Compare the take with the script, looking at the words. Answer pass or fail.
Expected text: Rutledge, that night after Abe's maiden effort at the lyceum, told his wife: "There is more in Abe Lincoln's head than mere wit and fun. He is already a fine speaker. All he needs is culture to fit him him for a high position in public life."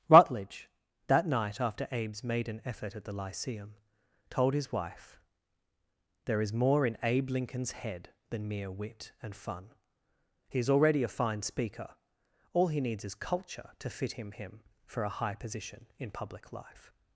pass